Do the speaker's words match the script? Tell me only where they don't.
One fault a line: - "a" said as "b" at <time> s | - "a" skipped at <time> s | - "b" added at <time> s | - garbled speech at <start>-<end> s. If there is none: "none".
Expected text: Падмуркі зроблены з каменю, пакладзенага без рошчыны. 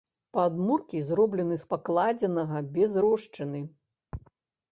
- "каменю" skipped at 1.7 s